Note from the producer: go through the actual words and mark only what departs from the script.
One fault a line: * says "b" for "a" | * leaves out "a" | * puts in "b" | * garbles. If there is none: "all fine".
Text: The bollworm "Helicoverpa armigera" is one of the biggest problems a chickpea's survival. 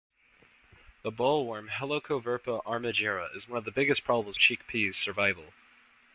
all fine